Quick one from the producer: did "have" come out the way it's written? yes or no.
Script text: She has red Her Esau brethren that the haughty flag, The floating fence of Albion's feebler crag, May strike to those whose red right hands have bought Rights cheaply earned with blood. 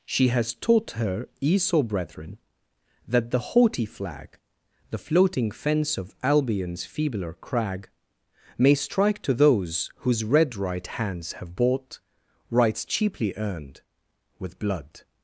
yes